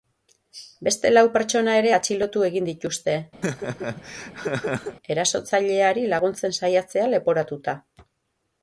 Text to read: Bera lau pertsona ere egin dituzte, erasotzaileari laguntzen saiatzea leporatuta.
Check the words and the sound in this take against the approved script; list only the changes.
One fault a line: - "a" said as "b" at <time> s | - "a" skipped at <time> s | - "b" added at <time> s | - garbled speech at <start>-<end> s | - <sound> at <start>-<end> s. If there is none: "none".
- "Bera" said as "Beste" at 0.8 s
- "atxilotu" added at 1.9 s
- laugh at 3.4-5.0 s